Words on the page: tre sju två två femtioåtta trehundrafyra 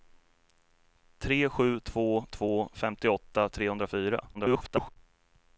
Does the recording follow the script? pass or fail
fail